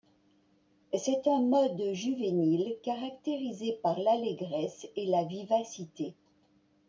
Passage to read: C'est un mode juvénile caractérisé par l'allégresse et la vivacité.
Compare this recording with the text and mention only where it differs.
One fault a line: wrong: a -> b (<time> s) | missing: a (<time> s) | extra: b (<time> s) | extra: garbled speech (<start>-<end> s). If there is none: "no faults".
no faults